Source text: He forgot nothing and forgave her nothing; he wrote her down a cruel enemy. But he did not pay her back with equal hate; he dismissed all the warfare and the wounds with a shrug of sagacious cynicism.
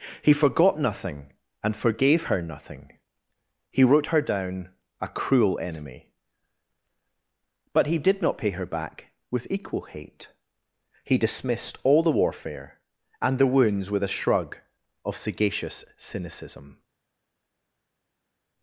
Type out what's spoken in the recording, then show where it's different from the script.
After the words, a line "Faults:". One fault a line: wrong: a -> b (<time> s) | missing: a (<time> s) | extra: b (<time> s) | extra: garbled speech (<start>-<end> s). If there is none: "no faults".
He forgot nothing and forgave her nothing; he wrote her down a cruel enemy. But he did not pay her back with equal hate; he dismissed all the warfare and the wounds with a shrug of sagacious cynicism.
Faults:
no faults